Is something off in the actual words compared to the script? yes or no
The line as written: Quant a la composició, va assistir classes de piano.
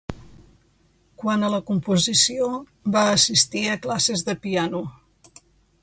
yes